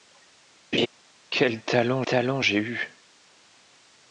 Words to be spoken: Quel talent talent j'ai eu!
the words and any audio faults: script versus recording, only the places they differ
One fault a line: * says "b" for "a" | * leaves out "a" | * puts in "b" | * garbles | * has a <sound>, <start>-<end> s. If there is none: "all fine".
* has a laugh, 0.7-0.9 s